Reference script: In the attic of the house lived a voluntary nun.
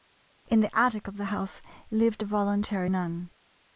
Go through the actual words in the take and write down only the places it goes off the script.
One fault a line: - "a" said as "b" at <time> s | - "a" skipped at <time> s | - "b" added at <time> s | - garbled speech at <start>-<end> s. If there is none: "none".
none